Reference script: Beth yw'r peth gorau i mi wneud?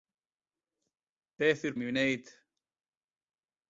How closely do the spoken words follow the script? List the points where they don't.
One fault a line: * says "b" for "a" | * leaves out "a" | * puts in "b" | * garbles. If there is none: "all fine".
* leaves out "peth gorau"